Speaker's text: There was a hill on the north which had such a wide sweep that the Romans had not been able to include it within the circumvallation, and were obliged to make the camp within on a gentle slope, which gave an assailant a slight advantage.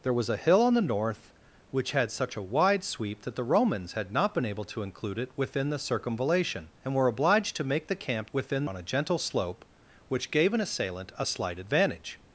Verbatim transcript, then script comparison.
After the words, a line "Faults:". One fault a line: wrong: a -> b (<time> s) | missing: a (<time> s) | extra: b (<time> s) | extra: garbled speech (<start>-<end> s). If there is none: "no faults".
There was a hill on the north which had such a wide sweep that the Romans had not been able to include it within the circumvallation, and were obliged to make the camp within on a gentle slope, which gave an assailant a slight advantage.
Faults:
no faults